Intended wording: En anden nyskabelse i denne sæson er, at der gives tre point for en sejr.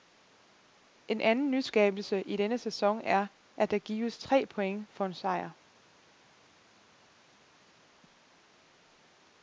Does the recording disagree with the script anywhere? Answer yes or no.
no